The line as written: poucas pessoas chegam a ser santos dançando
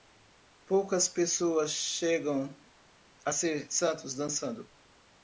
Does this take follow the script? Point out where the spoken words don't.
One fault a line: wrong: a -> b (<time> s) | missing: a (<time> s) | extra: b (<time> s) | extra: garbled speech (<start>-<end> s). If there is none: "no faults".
no faults